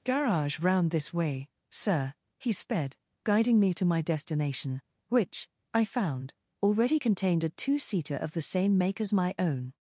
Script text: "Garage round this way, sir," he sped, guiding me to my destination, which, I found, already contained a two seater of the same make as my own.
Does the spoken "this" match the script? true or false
true